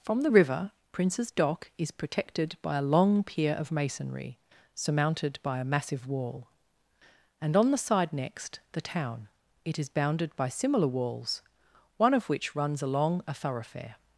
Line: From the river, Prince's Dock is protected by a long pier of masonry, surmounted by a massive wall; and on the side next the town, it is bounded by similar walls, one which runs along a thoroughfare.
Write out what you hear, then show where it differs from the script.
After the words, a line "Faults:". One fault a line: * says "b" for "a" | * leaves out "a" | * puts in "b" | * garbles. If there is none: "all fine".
From the river, Prince's Dock is protected by a long pier of masonry, surmounted by a massive wall; and on the side next the town, it is bounded by similar walls, one of which runs along a thoroughfare.
Faults:
* puts in "of"